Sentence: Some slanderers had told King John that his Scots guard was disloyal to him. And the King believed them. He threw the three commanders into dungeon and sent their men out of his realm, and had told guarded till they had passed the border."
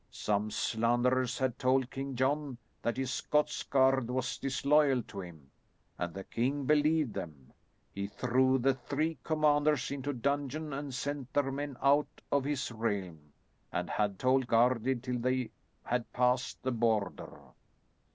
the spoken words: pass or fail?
pass